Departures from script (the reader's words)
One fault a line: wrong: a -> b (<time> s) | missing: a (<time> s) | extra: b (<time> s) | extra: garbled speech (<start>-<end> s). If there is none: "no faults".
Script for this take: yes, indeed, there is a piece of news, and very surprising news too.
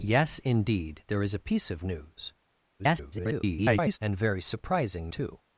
extra: garbled speech (2.8-4.0 s)
missing: news (5.1 s)